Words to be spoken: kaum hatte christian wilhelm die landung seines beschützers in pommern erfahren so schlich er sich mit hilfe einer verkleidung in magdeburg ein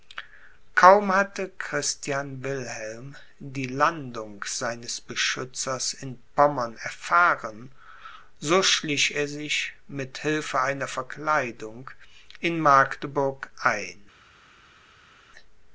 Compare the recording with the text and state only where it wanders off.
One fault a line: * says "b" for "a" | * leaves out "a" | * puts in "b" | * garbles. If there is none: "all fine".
all fine